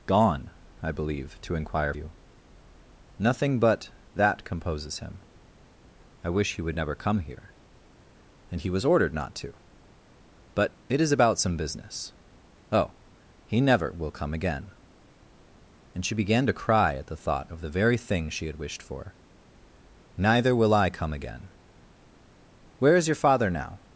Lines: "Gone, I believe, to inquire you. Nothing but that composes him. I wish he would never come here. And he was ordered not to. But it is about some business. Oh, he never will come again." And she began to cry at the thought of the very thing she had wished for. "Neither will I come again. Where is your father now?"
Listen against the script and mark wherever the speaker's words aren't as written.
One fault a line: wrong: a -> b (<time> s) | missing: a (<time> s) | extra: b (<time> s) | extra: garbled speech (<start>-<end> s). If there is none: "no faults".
no faults